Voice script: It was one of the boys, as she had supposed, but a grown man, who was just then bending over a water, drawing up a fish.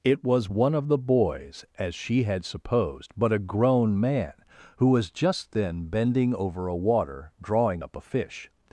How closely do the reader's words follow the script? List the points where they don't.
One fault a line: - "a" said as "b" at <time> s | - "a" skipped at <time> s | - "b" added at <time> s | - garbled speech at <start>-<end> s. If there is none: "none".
none